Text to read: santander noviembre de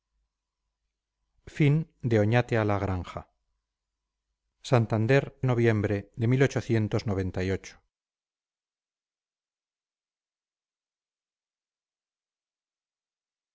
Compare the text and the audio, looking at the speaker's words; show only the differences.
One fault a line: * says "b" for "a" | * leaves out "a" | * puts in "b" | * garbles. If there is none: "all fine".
all fine